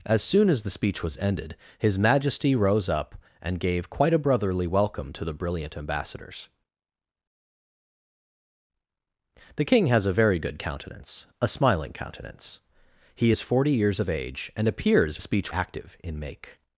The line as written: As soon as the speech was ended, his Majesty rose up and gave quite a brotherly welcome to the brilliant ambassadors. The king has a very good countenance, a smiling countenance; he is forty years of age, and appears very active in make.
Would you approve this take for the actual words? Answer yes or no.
no